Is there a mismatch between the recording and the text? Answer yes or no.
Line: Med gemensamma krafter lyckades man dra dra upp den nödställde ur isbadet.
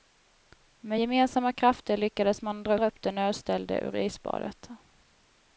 no